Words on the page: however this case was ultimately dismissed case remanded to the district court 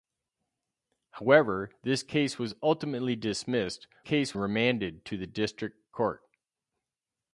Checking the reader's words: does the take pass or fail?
pass